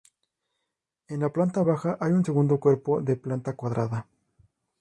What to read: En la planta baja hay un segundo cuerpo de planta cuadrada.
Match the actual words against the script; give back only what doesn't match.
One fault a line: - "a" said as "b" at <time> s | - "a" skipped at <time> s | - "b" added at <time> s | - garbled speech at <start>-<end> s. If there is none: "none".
none